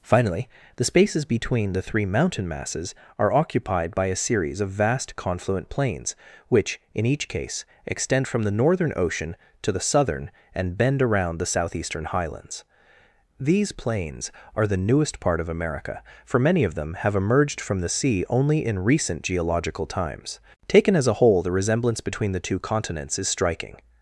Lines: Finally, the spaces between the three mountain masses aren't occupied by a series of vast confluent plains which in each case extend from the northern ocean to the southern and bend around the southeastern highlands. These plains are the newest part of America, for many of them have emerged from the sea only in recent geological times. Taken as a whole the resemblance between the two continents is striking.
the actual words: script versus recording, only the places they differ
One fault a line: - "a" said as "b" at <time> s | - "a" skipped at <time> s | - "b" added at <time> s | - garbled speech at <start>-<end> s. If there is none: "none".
- "aren't" said as "are" at 3.2 s